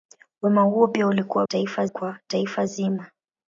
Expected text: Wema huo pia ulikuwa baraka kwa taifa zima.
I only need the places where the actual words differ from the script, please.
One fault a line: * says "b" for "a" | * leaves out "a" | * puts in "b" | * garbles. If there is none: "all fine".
* says "taifa" for "baraka"